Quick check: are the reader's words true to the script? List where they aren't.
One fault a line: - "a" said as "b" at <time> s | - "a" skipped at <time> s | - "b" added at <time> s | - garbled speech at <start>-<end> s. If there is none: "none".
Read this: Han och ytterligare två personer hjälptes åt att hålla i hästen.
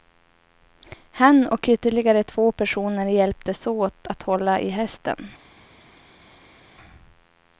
none